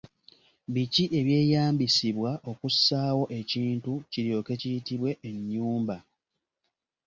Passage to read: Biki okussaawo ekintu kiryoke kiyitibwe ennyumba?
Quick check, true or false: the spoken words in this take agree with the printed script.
false